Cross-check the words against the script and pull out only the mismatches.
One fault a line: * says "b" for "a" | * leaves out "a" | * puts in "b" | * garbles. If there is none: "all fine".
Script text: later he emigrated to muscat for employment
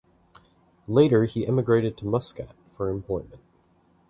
all fine